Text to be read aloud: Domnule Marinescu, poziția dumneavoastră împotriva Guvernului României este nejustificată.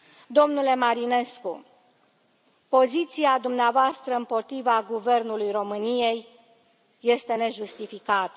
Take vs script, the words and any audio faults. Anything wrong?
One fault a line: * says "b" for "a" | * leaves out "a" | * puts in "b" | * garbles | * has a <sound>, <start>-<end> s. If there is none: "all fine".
all fine